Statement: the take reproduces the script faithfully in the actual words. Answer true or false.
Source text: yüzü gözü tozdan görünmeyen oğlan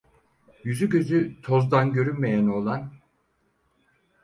true